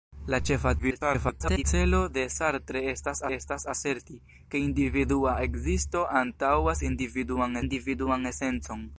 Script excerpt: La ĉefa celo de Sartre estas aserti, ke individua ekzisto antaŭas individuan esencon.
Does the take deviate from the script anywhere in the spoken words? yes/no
yes